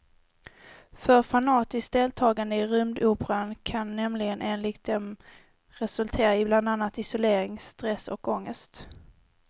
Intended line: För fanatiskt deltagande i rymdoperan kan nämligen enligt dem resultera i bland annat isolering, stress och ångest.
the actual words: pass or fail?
pass